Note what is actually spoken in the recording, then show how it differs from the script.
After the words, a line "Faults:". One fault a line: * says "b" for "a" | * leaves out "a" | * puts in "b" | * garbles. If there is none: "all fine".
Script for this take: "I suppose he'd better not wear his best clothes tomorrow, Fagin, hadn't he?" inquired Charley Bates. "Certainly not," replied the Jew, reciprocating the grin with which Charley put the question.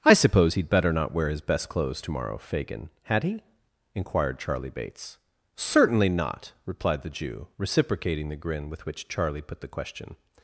"I suppose he'd better not wear his best clothes tomorrow, Fagin, had he?" inquired Charley Bates. "Certainly not," replied the Jew, reciprocating the grin with which Charley put the question.
Faults:
* says "had" for "hadn't"